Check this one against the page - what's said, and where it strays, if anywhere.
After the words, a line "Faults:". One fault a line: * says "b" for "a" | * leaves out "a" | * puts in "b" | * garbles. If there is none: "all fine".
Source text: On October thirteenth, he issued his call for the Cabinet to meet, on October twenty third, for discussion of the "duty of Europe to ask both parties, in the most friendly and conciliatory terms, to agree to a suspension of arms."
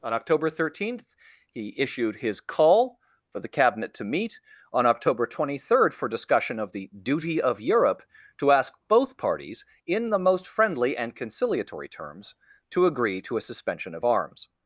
On October thirteenth, he issued his call for the Cabinet to meet, on October twenty third, for discussion of the "duty of Europe to ask both parties, in the most friendly and conciliatory terms, to agree to a suspension of arms."
Faults:
all fine